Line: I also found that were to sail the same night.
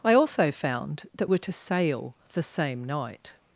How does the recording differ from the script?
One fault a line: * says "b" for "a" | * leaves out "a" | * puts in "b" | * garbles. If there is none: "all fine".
all fine